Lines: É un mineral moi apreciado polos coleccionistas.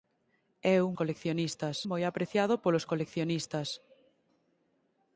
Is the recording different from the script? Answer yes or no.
yes